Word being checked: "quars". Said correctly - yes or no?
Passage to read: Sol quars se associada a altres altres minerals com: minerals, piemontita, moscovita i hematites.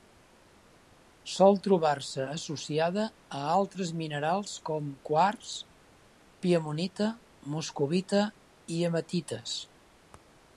no